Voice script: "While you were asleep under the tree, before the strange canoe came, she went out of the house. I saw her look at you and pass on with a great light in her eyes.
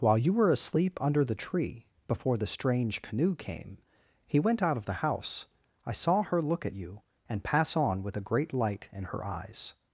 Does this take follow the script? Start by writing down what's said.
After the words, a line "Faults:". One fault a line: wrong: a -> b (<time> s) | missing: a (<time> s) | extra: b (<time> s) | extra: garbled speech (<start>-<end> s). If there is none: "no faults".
"While you were asleep under the tree, before the strange canoe came, he went out of the house. I saw her look at you and pass on with a great light in her eyes.
Faults:
wrong: she -> he (4.2 s)